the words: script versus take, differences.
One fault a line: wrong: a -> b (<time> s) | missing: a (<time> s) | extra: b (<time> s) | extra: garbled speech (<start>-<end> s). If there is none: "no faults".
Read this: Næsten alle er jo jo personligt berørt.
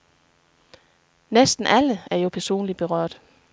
missing: jo (2.3 s)